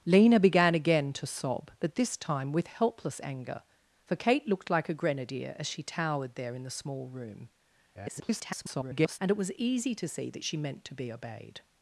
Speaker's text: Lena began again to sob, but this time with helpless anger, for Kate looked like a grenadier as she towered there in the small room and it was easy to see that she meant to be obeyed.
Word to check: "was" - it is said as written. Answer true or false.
true